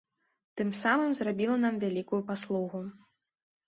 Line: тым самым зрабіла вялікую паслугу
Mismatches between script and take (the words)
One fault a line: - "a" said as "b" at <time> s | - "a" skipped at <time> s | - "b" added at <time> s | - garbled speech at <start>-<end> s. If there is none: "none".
- "нам" added at 1.7 s